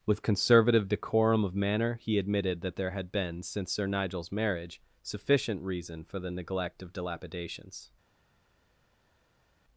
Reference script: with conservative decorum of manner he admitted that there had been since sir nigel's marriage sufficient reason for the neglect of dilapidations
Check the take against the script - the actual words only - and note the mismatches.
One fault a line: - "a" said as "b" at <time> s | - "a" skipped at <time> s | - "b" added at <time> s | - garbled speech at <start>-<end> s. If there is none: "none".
none